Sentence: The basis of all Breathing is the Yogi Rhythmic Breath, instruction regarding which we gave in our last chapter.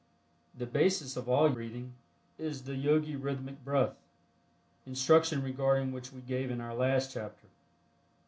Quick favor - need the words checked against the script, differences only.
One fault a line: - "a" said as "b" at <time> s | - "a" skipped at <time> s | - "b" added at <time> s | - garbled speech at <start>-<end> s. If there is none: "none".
none